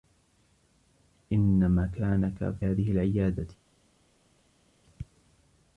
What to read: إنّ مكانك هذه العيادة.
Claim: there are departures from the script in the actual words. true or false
false